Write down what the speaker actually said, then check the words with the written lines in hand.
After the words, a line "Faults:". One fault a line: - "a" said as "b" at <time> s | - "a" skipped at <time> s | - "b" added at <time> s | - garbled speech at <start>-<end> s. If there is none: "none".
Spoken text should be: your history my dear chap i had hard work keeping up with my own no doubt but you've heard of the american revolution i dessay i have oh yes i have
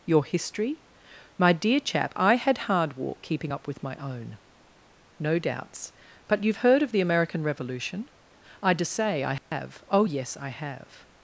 your history my dear chap i had hard walk keeping up with my own no doubts but you've heard of the american revolution i dessay i have oh yes i have
Faults:
- "work" said as "walk" at 3.0 s
- "doubt" said as "doubts" at 5.4 s